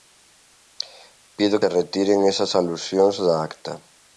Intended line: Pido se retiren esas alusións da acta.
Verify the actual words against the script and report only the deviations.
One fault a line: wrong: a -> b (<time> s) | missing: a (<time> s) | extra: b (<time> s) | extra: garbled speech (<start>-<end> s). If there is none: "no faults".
no faults